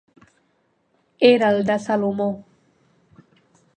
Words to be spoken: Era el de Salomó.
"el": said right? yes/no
yes